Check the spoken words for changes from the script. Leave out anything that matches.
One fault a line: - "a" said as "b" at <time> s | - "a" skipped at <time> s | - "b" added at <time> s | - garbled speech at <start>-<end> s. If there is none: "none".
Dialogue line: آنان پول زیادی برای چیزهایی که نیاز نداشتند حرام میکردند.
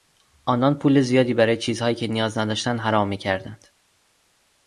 none